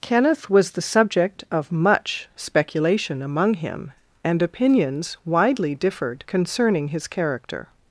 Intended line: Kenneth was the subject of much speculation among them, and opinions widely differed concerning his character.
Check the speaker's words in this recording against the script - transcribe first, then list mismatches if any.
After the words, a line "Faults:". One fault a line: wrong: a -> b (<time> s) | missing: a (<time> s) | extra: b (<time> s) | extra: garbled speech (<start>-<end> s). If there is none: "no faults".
Kenneth was the subject of much speculation among him, and opinions widely differed concerning his character.
Faults:
wrong: them -> him (3.5 s)